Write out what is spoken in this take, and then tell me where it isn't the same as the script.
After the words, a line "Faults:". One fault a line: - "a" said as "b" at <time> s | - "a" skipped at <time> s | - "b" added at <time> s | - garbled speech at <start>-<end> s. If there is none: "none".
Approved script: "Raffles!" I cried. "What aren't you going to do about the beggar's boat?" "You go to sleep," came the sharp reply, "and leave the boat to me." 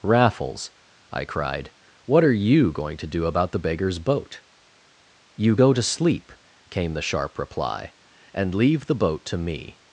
"Raffles!" I cried. "What are you going to do about the beggar's boat?" "You go to sleep," came the sharp reply, "and leave the boat to me."
Faults:
- "aren't" said as "are" at 2.2 s